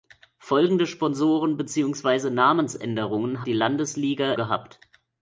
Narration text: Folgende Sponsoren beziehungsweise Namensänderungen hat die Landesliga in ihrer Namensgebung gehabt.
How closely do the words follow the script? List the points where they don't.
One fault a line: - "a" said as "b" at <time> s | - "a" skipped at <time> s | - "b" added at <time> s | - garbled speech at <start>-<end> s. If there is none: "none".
- "hat" skipped at 3.4 s
- "in ihrer Namensgebung" skipped at 4.3 s